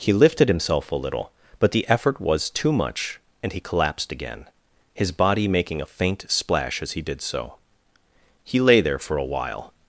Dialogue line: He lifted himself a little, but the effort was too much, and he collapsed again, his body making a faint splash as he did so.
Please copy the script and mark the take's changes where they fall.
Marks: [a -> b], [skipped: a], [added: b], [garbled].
He lifted himself a little, but the effort was too much, and he collapsed again, his body making a faint splash as he did so. [added: He lay there for a while]